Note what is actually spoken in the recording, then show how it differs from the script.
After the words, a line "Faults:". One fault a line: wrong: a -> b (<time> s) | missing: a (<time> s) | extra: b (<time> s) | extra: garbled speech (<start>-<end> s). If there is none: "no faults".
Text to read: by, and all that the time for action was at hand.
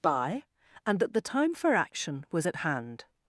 by, and that the time for action was at hand.
Faults:
missing: all (1.0 s)